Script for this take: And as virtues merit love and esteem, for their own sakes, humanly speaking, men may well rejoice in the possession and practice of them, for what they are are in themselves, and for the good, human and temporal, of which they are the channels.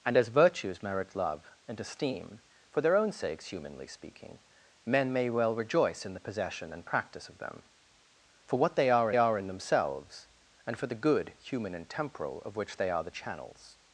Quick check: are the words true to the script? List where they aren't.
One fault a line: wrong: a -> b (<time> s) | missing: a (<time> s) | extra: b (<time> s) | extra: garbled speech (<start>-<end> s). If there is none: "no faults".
no faults